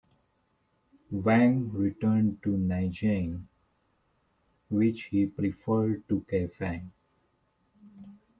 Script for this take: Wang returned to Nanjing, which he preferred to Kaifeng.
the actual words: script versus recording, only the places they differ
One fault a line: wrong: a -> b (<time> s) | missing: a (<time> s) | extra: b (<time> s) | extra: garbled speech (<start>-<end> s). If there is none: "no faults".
no faults